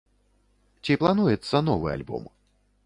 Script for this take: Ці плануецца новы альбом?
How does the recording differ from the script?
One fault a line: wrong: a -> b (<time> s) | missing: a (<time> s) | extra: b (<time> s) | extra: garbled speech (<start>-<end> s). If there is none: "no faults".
no faults